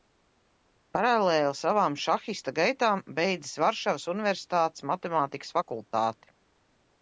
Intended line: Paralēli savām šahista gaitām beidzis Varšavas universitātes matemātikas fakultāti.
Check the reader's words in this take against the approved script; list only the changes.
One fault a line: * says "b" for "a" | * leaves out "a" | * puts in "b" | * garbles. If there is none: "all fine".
all fine